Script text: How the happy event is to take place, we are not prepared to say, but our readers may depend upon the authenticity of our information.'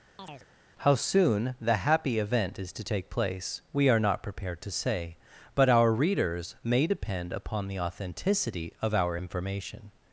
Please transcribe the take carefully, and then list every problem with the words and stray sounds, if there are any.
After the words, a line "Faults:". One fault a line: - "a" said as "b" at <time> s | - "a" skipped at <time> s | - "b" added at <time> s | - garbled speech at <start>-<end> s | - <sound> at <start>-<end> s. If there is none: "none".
How soon the happy event is to take place, we are not prepared to say, but our readers may depend upon the authenticity of our information.'
Faults:
- chirp at 0.2-0.5 s
- "soon" added at 0.9 s